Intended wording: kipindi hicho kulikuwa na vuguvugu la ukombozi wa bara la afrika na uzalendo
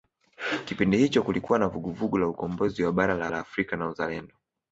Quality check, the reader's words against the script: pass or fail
fail